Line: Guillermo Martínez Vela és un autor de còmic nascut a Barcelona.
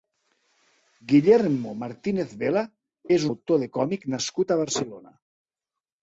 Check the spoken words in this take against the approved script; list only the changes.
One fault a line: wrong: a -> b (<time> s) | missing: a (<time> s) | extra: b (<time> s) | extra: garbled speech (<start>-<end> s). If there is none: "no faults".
missing: un (3.3 s)